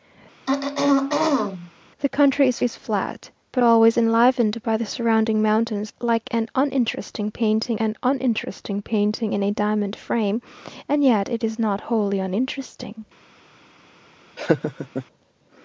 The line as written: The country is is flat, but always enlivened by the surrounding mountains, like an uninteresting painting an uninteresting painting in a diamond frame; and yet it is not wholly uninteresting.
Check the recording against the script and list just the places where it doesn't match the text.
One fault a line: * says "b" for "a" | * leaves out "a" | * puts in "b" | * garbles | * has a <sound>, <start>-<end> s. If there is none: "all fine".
* has a throat clearing, 0.5-1.7 s
* has a laugh, 14.4-15.1 s